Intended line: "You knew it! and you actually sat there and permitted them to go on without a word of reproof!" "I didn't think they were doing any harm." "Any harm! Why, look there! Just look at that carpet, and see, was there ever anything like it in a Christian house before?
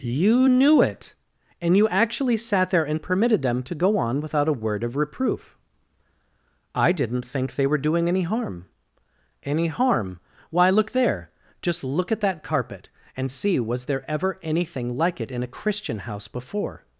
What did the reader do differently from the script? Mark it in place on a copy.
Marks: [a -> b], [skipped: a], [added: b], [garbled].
"You knew it! and you actually sat there and permitted them to go on without a word of reproof!" "I didn't think they were doing any harm." "Any harm! Why, look there! Just look at that carpet, and see, was there ever anything like it in a Christian house before?